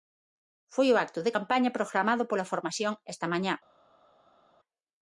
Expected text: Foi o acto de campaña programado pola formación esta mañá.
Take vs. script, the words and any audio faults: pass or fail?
pass